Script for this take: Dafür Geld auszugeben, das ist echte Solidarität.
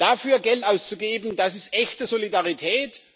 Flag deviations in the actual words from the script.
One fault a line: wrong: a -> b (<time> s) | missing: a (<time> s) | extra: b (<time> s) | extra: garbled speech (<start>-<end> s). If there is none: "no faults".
no faults